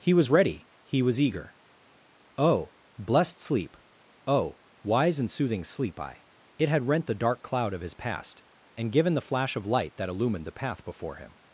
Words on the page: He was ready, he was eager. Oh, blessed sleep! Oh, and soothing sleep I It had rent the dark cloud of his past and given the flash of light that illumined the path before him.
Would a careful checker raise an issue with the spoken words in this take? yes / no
yes